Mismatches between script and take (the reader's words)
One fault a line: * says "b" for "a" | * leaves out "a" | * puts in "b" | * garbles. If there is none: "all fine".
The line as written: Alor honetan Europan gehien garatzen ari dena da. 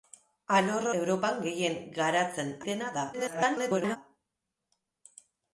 * leaves out "honetan"
* leaves out "ari"
* garbles